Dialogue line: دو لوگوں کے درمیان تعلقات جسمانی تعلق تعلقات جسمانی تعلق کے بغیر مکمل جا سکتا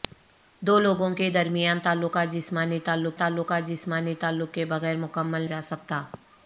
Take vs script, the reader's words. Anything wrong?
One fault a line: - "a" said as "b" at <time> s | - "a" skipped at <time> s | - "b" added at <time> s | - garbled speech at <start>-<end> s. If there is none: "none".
none